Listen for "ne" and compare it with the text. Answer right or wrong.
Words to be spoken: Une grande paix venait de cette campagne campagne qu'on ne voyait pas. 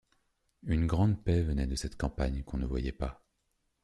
right